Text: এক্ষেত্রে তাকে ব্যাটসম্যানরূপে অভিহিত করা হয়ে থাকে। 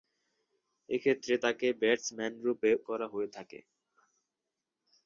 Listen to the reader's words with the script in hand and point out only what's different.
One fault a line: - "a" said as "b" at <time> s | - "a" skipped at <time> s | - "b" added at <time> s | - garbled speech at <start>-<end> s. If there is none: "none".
- "অভিহিত" skipped at 2.7 s